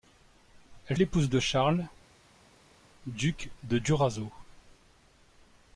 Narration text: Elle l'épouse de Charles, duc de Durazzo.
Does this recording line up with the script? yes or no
yes